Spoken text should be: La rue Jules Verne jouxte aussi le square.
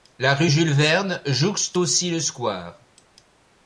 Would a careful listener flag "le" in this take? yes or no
no